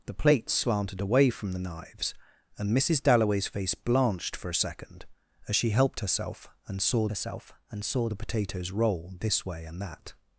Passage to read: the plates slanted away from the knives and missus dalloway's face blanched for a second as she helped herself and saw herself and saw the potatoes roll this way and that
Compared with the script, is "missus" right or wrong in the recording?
right